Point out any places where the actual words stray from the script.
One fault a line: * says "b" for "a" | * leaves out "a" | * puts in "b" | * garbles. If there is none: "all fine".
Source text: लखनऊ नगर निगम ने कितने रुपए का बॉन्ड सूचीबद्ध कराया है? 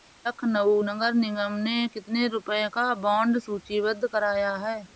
all fine